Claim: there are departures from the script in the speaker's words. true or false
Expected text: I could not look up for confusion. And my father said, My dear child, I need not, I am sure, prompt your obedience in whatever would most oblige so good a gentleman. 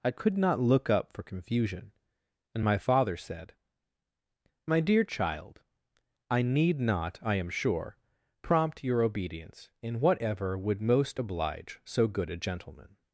false